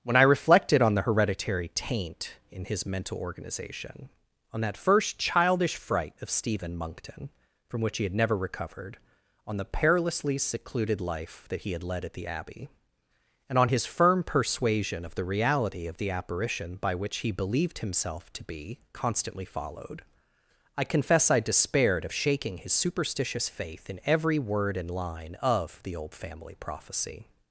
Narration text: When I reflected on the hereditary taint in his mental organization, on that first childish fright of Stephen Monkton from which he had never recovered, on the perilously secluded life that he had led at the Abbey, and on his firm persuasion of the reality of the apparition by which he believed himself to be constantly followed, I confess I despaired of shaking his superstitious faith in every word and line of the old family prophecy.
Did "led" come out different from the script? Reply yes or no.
no